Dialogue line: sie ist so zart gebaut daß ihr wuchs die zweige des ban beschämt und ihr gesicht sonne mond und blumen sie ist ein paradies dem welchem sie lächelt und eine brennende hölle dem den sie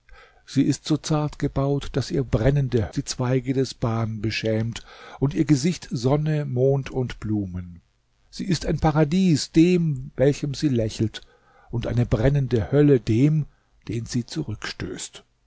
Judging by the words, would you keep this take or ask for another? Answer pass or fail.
fail